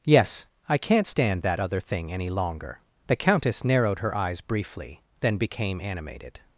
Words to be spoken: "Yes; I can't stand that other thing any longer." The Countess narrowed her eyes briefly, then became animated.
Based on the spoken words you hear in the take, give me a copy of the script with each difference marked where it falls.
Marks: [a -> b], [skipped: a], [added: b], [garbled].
"Yes; I can't stand that other thing any longer." The Countess narrowed her eyes briefly, then became animated.